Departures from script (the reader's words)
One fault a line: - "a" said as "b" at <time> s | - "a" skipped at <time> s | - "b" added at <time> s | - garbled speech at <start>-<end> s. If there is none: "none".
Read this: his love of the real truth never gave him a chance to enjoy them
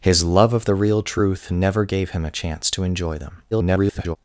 - garbled speech at 3.5-4.2 s